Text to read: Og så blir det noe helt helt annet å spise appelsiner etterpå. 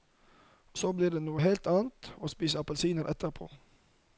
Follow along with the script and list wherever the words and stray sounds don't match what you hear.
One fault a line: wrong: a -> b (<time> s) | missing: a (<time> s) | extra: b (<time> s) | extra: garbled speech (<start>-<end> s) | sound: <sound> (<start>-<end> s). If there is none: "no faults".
missing: helt (1.7 s)